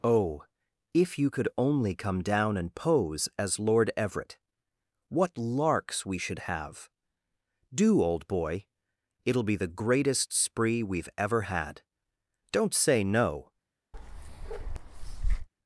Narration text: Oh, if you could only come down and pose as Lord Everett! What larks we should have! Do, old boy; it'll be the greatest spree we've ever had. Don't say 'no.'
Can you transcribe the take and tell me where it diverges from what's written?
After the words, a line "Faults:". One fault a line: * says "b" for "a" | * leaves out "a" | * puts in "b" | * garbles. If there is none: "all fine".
Oh, if you could only come down and pose as Lord Everett! What larks we should have! Do, old boy; it'll be the greatest spree we've ever had. Don't say 'no.'
Faults:
all fine